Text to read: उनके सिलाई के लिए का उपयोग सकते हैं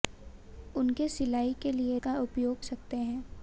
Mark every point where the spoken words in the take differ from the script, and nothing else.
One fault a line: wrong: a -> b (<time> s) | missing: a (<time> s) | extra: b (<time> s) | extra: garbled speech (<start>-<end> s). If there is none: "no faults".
no faults